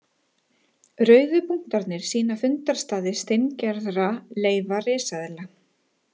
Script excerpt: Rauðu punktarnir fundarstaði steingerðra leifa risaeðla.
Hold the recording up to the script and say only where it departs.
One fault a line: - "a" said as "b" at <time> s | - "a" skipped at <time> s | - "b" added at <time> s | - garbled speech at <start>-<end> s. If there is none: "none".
- "sýna" added at 2.1 s